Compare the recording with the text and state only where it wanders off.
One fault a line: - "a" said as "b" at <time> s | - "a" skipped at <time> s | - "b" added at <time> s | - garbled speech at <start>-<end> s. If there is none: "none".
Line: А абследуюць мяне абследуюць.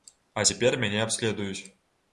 - "абследуюць" said as "цяпер" at 0.5 s